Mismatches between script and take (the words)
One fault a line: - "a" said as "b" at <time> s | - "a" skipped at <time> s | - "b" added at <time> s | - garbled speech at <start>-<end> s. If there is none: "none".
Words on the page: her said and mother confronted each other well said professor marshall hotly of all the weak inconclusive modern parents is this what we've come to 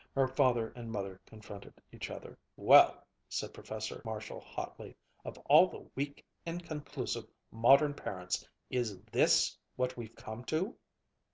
- "said" said as "father" at 0.3 s